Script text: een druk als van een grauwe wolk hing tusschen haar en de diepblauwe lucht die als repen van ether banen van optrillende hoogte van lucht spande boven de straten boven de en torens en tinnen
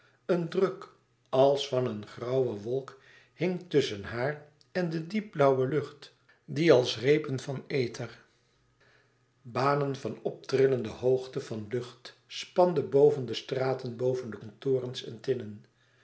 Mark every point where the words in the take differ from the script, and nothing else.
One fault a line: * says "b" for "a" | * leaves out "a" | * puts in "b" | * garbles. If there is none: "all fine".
all fine